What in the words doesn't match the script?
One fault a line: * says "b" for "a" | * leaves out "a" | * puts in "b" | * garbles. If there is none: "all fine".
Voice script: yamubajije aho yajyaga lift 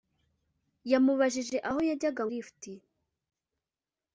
all fine